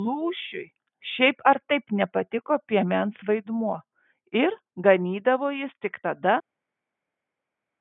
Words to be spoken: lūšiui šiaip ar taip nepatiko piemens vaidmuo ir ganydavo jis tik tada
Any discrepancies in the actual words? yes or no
no